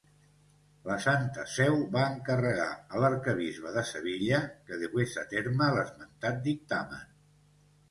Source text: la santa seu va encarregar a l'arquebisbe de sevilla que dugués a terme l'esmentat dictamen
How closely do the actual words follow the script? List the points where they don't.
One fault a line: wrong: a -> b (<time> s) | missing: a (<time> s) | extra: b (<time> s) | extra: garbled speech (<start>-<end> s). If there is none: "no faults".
no faults